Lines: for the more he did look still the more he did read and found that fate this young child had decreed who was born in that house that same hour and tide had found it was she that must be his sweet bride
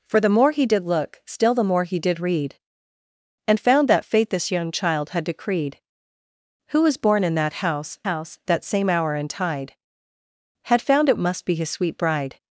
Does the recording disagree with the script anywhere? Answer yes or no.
yes